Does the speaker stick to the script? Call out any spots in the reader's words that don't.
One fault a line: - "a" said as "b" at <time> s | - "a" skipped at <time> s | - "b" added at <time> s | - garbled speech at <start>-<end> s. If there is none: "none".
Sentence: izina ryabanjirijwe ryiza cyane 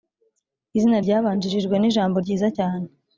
- "nijambo" added at 1.8 s